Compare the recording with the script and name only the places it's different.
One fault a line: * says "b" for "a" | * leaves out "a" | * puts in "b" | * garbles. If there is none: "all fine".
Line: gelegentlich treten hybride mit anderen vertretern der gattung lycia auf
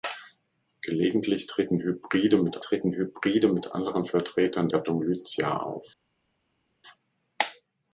* puts in "treten hybride mit"
* leaves out "der"